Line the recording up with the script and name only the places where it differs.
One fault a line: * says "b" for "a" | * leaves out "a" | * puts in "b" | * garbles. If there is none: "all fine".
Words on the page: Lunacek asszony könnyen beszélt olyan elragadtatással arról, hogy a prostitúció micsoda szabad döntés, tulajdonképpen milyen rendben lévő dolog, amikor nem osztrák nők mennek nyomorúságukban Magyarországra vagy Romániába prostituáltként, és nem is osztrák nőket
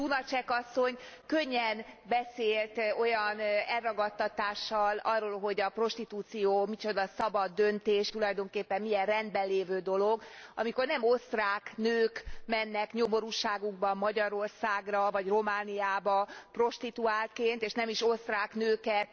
all fine